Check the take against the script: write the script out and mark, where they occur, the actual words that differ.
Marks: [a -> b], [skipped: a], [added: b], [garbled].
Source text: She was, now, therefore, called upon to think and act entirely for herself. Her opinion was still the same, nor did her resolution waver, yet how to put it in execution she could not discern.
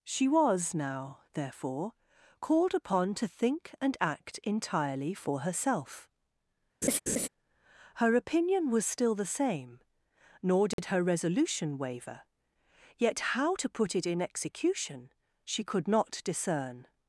She was, now, therefore, called upon to think and act entirely for herself. Her opinion was still the same, nor did her resolution waver, yet how to put it in execution she could not discern.